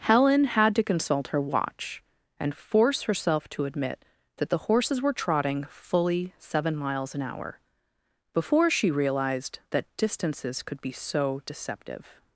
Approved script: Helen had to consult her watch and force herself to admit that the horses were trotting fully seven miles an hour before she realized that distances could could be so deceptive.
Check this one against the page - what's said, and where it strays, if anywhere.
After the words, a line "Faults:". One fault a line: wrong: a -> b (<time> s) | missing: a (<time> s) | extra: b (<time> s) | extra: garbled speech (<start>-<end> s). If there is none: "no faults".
Helen had to consult her watch and force herself to admit that the horses were trotting fully seven miles an hour before she realized that distances could be so deceptive.
Faults:
missing: could (10.8 s)